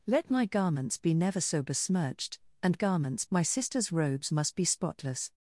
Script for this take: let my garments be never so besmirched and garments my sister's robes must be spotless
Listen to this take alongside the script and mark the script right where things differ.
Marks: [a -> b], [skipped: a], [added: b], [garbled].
let my garments be never so besmirched and garments my sister's robes must be spotless